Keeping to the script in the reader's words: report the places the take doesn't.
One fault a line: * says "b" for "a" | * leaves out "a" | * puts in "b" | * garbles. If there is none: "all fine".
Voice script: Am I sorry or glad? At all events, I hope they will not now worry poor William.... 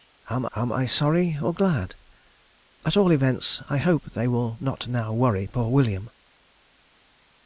* puts in "am"